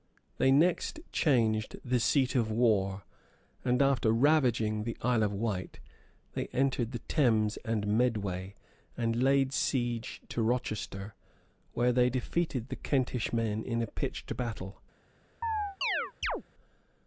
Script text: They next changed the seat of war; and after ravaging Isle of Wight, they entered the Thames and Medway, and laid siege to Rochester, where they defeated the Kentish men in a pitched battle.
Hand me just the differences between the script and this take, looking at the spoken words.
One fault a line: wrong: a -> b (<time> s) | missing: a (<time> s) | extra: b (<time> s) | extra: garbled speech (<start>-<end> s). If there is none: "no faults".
extra: the (4.8 s)